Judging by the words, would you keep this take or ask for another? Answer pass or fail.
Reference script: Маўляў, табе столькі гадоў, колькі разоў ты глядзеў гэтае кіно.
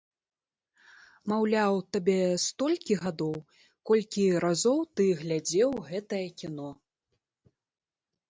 pass